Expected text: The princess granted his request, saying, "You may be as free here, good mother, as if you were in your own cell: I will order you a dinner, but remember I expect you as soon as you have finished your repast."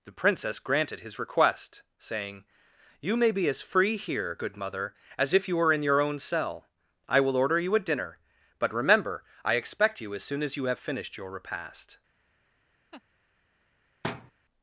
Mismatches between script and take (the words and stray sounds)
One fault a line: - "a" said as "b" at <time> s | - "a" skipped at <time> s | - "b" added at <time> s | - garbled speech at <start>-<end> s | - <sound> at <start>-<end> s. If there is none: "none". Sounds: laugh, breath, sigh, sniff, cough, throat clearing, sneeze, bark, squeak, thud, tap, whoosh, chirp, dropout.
- laugh at 12.9-13.0 s
- thud at 14.0-14.3 s